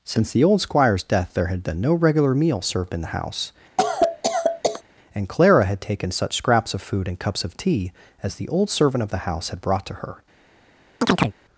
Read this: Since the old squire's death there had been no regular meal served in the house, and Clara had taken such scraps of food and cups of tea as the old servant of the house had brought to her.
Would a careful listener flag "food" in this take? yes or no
no